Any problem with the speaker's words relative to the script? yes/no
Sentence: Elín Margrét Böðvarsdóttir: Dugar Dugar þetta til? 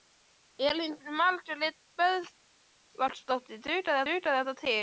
no